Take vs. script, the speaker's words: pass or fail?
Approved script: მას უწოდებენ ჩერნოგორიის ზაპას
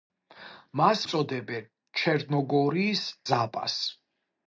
pass